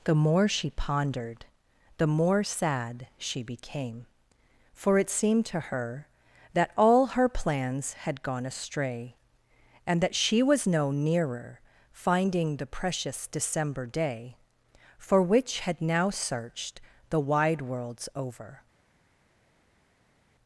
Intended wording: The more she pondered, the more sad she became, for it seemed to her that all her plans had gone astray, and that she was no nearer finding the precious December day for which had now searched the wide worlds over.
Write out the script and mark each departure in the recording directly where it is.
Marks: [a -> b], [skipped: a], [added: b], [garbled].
The more she pondered, the more sad she became, for it seemed to her that all her plans had gone astray, and that she was no nearer finding the precious December day for which had now searched the wide worlds over.